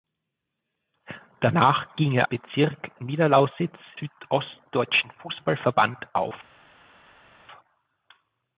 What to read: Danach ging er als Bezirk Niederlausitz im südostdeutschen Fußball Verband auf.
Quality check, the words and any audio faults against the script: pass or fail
fail